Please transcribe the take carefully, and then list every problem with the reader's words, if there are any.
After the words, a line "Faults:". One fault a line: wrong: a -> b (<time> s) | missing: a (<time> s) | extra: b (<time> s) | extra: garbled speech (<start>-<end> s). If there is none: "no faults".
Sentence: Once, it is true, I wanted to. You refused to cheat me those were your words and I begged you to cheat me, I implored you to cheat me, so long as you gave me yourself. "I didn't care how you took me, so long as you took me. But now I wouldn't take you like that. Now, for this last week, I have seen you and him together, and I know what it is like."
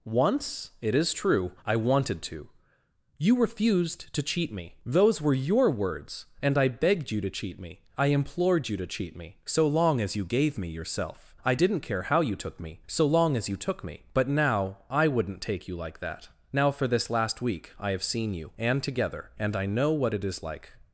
Once, it is true, I wanted to. You refused to cheat me those were your words and I begged you to cheat me, I implored you to cheat me, so long as you gave me yourself. "I didn't care how you took me, so long as you took me. But now I wouldn't take you like that. Now, for this last week, I have seen you and together, and I know what it is like."
Faults:
missing: him (18.8 s)